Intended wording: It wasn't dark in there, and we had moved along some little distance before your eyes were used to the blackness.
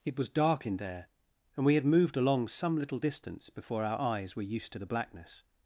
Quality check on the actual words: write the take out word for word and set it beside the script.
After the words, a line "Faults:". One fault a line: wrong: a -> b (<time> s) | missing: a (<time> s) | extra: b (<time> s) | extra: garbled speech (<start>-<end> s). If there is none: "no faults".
It was dark in there, and we had moved along some little distance before our eyes were used to the blackness.
Faults:
wrong: wasn't -> was (0.2 s)
wrong: your -> our (3.8 s)